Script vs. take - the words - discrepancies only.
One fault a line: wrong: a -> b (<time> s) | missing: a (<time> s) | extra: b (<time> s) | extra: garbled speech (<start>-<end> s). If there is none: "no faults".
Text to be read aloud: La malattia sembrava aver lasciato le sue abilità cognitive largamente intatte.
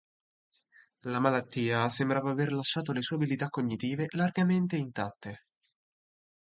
no faults